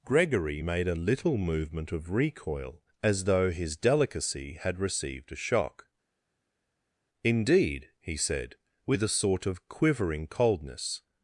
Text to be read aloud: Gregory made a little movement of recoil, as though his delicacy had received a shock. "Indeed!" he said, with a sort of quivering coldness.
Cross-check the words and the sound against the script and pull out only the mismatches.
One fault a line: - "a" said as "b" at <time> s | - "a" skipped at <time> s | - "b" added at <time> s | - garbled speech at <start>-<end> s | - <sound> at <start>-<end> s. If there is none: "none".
none